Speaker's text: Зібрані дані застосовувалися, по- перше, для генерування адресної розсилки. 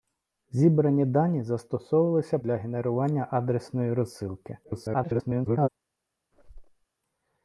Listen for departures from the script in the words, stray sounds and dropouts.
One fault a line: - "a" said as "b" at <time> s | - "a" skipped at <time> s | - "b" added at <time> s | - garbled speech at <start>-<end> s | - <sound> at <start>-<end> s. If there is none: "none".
- "по перше" skipped at 2.4 s
- garbled speech at 4.6-5.7 s
- squeak at 6.3-6.8 s